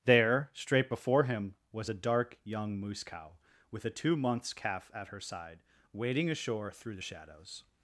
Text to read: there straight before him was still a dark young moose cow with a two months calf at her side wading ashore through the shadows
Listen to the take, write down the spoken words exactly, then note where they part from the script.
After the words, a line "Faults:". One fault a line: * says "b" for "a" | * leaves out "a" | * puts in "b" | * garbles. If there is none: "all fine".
there straight before him was a dark young moose cow with a two months calf at her side wading ashore through the shadows
Faults:
* leaves out "still"